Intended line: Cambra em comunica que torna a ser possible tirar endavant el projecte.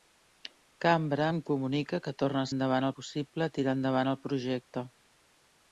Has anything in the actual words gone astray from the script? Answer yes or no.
yes